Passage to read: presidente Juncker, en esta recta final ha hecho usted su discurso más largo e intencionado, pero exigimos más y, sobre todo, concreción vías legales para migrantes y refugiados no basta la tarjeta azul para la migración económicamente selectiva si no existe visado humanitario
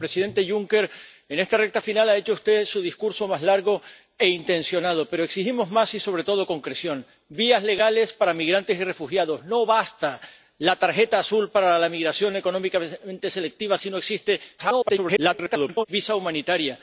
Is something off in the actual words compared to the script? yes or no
yes